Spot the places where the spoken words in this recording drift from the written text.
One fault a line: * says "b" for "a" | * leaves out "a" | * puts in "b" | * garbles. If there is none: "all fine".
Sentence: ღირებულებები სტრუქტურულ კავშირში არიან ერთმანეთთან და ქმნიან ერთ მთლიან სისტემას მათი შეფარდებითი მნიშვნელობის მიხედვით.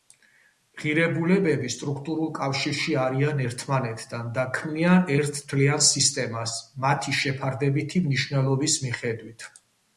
all fine